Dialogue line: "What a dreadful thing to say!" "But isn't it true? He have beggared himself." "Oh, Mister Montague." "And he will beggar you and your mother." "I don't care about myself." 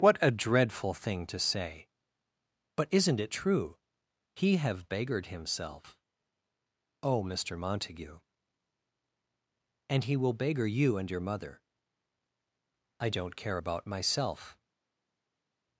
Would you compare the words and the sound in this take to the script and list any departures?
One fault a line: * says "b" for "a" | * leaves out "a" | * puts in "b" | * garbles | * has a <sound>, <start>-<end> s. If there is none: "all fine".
all fine